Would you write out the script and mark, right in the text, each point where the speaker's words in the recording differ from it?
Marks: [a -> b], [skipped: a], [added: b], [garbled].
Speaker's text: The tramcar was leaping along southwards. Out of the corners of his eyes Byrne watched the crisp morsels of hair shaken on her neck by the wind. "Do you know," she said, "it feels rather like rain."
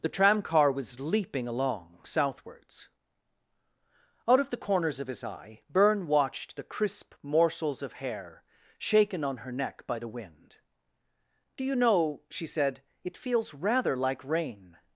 The tramcar was leaping along southwards. Out of the corners of his [eyes -> eye] Byrne watched the crisp morsels of hair shaken on her neck by the wind. "Do you know," she said, "it feels rather like rain."